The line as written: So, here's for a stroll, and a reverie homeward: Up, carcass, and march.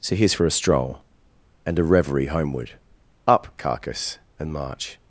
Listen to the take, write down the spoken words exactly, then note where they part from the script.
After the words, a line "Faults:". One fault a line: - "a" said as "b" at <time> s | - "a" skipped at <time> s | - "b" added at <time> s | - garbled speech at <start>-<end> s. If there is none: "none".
So, here's for a stroll, and a reverie homeward: Up, carcass, and march.
Faults:
none